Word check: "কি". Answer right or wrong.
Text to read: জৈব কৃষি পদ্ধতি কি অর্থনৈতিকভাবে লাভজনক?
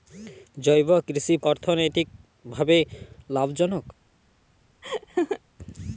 wrong